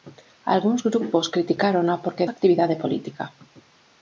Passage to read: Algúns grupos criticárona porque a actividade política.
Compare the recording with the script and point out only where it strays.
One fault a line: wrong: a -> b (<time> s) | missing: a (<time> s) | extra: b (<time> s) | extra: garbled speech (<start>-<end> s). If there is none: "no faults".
no faults